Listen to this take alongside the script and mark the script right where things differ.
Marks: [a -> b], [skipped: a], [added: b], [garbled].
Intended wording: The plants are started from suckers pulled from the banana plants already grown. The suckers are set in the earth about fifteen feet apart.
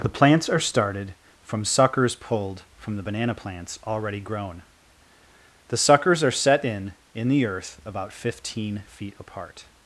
The plants are started from suckers pulled from the banana plants already grown. The suckers are set in [added: in] the earth about fifteen feet apart.